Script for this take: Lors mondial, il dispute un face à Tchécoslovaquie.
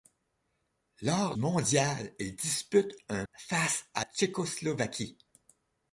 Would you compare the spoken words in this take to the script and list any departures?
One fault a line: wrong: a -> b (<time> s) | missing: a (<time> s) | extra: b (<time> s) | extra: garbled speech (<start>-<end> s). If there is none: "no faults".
no faults